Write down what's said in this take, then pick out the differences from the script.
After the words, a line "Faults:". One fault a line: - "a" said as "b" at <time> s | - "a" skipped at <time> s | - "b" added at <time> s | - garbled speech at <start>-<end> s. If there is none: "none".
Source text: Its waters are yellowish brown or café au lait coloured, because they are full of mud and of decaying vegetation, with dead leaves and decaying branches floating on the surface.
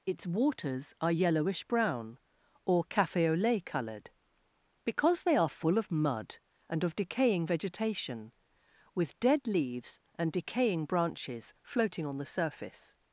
Its waters are yellowish brown or café au lait coloured, because they are full of mud and of decaying vegetation, with dead leaves and decaying branches floating on the surface.
Faults:
none